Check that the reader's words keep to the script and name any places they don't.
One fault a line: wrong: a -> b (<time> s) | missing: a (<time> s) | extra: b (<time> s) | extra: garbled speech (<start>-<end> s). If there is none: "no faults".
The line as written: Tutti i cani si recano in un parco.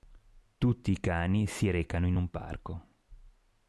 no faults